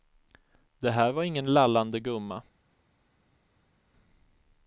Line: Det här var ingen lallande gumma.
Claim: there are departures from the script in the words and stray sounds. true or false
false